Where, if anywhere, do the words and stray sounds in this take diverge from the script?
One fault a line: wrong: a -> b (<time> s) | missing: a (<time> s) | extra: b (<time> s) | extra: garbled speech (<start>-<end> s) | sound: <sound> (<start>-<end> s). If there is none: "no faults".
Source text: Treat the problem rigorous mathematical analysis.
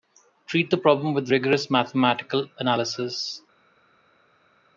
extra: with (1.2 s)